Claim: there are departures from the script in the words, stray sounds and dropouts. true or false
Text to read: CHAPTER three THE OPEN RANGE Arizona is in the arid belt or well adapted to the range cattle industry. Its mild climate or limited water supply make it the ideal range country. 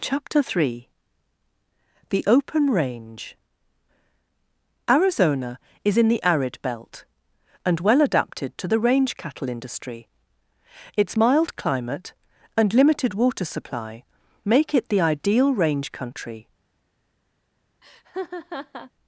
true